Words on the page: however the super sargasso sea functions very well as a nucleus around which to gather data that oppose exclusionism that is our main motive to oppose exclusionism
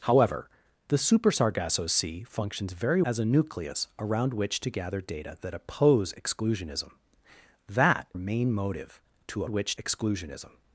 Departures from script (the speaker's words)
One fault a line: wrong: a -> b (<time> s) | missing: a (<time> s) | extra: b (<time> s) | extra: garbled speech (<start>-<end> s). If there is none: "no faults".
missing: well (3.0 s)
missing: is our (8.1 s)
wrong: oppose -> which (9.5 s)